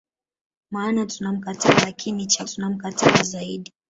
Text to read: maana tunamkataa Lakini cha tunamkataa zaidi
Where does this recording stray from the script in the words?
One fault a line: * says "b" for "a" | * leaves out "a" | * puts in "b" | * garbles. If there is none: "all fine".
all fine